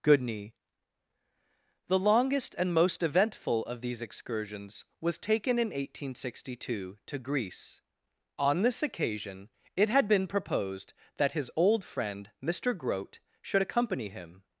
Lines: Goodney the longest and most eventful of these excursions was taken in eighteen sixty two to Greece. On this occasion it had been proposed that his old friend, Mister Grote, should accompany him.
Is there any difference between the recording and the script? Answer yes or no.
no